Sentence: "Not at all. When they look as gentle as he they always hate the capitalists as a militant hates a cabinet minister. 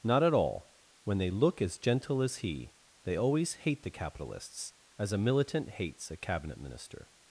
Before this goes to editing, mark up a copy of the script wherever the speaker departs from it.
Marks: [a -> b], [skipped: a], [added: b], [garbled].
"Not at all. When they look as gentle as he they always hate the capitalists as a militant hates a cabinet minister.